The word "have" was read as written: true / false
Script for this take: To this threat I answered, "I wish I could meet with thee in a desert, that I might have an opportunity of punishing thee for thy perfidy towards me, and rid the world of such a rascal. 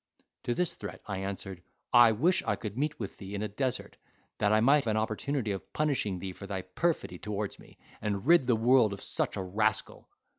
false